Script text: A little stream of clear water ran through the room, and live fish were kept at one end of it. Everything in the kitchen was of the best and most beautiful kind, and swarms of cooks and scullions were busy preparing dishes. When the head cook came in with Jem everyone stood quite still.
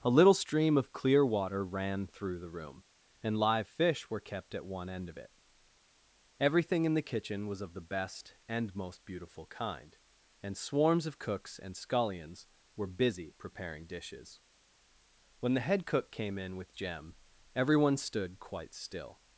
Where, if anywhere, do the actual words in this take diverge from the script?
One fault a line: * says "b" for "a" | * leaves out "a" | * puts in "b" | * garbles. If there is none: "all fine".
all fine